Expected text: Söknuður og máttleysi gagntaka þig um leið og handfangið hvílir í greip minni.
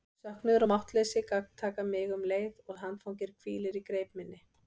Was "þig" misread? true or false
true